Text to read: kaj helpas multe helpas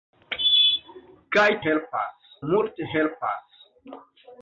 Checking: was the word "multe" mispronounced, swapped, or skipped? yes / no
no